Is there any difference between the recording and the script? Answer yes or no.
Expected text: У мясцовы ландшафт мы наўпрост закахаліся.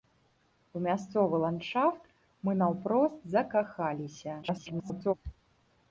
yes